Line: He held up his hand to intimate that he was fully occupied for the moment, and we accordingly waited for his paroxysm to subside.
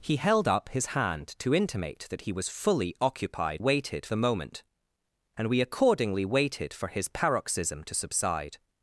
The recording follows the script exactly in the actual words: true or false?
false